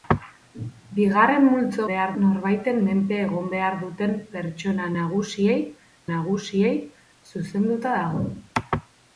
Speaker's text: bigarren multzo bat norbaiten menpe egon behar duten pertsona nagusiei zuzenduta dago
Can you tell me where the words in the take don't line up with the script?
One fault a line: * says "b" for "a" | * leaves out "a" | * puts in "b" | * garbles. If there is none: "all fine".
* says "behar" for "bat"
* puts in "nagusiei"